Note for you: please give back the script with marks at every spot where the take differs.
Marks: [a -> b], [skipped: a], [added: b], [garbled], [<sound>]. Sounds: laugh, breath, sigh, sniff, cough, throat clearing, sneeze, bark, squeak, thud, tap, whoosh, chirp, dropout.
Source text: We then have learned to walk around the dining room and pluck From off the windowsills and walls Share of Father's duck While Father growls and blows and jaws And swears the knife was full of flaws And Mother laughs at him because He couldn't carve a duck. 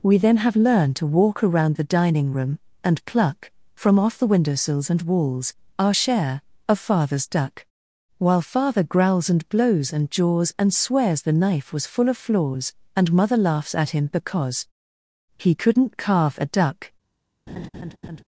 We then have learned to walk around the dining room and pluck From off the windowsills and walls [added: Our] Share of Father's duck While Father growls and blows and jaws And swears the knife was full of flaws And Mother laughs at him because He couldn't carve a duck. [laugh]